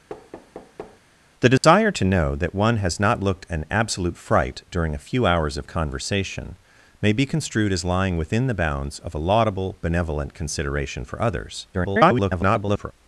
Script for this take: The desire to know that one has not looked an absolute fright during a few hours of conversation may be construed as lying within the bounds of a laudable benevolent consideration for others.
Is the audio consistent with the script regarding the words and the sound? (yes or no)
no